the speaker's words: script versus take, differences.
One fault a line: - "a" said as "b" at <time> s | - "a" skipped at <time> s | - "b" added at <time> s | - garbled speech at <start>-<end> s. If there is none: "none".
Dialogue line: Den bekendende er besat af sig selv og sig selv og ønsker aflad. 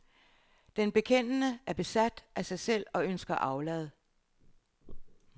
- "sig selv og" skipped at 3.0 s